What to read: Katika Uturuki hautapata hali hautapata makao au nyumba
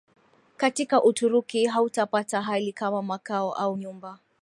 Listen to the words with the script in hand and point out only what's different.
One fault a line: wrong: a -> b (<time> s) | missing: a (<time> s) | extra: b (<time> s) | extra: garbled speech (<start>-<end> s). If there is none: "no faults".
wrong: hautapata -> kama (2.7 s)